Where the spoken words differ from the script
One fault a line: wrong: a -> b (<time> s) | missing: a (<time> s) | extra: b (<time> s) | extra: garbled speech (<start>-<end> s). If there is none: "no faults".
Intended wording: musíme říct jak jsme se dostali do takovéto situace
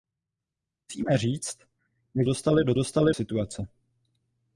missing: jsme se (2.3 s)
wrong: takovéto -> dostali (2.7 s)